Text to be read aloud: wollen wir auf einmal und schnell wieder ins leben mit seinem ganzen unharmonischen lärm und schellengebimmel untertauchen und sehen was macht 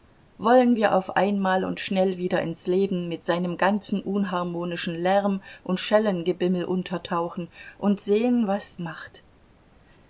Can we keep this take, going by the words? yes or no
yes